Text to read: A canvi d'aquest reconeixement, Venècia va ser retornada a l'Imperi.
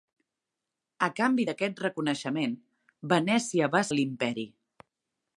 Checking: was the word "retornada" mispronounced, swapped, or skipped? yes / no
yes